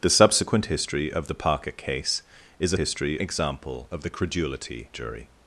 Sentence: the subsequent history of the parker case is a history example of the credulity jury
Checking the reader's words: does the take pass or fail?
pass